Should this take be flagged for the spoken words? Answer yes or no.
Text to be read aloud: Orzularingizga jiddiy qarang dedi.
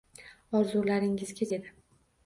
yes